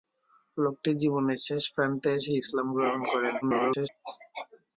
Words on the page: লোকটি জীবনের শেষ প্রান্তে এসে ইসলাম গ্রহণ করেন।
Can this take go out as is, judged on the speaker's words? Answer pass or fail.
fail